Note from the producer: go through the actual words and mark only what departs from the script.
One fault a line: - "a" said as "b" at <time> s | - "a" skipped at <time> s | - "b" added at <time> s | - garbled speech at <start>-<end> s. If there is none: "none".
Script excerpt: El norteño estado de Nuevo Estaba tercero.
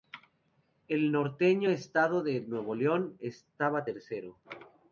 - "León" added at 2.7 s